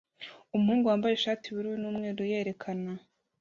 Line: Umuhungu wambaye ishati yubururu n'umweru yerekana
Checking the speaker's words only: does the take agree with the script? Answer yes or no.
yes